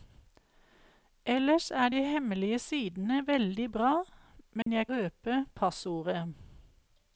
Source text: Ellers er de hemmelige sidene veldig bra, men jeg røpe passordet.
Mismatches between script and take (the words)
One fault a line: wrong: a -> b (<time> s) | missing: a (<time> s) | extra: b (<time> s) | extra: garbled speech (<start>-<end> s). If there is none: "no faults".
no faults